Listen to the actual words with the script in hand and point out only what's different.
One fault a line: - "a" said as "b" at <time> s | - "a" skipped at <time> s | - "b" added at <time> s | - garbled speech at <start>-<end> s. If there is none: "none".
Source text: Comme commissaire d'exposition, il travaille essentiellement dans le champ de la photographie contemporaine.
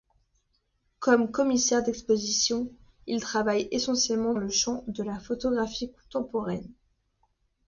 - "dans" skipped at 4.3 s